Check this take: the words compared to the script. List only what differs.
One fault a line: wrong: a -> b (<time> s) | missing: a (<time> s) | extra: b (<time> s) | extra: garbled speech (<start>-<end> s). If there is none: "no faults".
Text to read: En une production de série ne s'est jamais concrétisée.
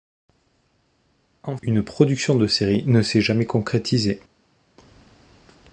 no faults